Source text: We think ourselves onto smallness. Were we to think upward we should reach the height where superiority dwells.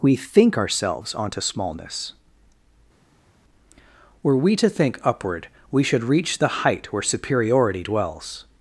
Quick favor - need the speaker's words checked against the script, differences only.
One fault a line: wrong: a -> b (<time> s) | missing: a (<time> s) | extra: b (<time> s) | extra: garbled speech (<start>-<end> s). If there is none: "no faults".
no faults